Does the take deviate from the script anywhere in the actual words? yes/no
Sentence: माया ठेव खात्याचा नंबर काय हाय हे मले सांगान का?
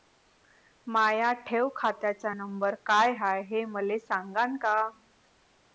no